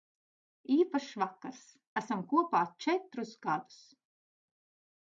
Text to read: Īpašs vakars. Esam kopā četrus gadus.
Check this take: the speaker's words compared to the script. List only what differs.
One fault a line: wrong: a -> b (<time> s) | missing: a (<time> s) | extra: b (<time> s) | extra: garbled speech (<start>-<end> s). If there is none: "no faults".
no faults